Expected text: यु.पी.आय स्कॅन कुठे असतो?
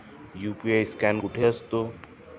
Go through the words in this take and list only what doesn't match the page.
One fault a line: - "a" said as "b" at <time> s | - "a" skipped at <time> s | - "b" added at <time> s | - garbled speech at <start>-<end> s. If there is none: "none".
none